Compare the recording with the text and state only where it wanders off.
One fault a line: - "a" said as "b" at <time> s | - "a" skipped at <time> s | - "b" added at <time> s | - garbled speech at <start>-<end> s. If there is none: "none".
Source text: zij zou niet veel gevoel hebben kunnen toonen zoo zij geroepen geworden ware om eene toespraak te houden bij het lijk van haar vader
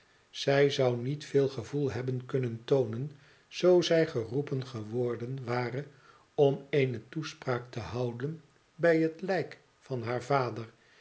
none